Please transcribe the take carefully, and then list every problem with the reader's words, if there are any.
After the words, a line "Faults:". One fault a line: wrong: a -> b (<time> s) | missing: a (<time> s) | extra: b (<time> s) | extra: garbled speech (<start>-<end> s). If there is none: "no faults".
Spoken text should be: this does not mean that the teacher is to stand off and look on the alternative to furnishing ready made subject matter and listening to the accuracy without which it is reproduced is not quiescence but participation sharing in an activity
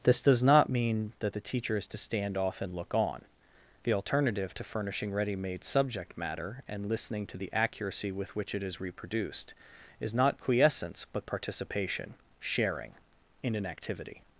this does not mean that the teacher is to stand off and look on the alternative to furnishing ready made subject matter and listening to the accuracy with which it is reproduced is not quiescence but participation sharing in an activity
Faults:
wrong: without -> with (8.1 s)